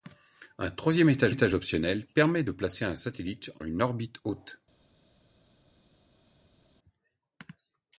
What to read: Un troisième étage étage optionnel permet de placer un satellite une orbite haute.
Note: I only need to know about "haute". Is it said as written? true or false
true